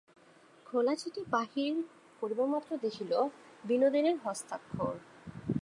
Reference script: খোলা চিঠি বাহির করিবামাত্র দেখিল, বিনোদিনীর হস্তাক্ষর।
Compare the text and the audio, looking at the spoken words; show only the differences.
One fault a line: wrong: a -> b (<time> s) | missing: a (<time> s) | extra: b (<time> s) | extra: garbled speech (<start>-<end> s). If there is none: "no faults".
no faults